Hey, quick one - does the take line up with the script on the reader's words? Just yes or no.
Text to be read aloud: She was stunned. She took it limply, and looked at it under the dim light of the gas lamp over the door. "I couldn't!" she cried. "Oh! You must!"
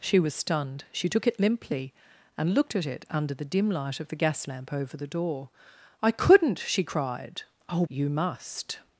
yes